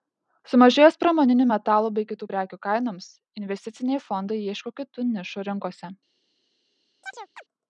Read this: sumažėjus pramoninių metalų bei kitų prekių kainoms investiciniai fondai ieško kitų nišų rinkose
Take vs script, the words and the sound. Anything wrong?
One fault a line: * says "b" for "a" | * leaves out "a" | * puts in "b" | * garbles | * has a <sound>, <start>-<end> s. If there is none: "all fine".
* has a chirp, 7.0-7.4 s